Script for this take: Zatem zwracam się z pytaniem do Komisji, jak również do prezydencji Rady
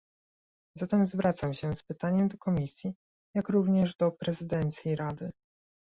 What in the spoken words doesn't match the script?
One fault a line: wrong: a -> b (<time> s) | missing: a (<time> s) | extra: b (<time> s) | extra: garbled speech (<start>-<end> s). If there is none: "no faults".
no faults